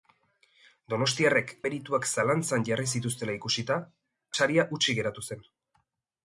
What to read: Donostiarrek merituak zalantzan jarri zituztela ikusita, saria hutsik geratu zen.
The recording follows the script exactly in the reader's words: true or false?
true